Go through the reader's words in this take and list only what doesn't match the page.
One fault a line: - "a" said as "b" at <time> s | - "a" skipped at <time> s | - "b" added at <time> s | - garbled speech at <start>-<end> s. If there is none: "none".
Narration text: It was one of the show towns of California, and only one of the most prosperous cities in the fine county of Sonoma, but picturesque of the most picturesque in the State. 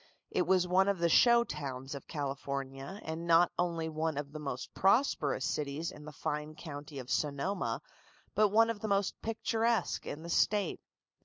- "not" added at 3.3 s
- "picturesque" said as "one" at 8.5 s